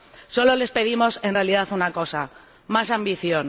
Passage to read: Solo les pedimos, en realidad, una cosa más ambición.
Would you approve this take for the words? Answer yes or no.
yes